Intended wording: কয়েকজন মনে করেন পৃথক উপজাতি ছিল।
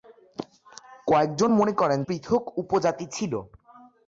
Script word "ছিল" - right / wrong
right